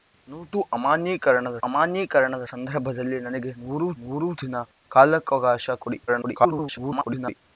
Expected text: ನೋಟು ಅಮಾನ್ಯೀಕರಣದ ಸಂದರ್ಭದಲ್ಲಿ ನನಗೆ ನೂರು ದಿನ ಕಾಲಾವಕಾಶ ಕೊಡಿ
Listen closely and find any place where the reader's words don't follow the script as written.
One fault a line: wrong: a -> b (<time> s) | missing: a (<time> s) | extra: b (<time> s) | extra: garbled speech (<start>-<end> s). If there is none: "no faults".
extra: ಅಮಾನ್ಯೀಕರಣದ (1.6 s)
extra: ನೂರು (4.0 s)
extra: garbled speech (6.1-7.4 s)